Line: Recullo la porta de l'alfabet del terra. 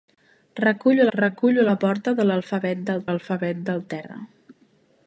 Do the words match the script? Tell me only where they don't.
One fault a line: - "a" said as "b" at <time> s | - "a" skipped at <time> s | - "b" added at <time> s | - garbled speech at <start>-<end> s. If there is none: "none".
- "recullo" added at 1.1 s
- "l'alfabet del" added at 3.1 s